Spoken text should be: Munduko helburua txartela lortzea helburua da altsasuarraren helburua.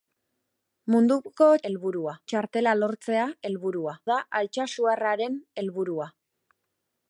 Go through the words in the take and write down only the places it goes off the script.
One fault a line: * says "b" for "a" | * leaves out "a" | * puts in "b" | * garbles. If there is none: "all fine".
all fine